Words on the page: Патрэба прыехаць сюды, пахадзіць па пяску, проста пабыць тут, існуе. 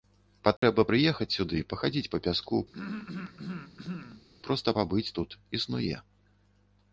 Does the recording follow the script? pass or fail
pass